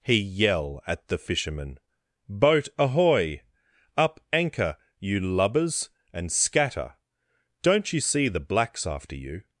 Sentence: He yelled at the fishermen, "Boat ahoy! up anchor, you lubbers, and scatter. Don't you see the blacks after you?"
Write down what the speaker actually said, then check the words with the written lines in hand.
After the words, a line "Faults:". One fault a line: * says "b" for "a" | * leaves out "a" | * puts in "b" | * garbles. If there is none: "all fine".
He yell at the fishermen, "Boat ahoy! up anchor, you lubbers, and scatter. Don't you see the blacks after you?"
Faults:
* says "yell" for "yelled"